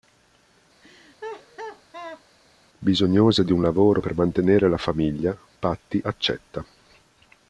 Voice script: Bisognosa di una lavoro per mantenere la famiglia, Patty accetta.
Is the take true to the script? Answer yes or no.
no